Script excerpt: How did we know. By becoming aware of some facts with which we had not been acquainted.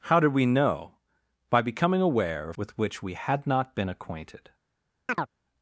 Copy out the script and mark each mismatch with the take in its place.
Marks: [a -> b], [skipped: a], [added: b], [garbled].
How did we know. By becoming aware of [skipped: some facts] with which we had not been acquainted.